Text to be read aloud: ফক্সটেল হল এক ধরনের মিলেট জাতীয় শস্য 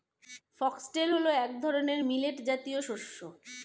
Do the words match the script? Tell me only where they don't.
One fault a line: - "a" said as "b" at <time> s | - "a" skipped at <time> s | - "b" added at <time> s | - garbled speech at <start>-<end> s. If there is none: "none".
none